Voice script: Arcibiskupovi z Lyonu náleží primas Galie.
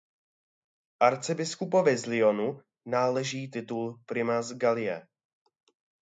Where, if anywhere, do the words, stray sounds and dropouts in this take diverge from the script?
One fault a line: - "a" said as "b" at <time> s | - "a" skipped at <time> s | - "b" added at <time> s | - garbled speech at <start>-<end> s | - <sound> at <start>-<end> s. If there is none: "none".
- "titul" added at 3.5 s